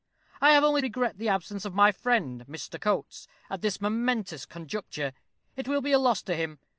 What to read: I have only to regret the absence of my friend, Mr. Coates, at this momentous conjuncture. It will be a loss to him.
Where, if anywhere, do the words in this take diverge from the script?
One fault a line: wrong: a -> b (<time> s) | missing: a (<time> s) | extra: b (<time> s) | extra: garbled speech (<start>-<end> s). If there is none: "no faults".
missing: to (0.8 s)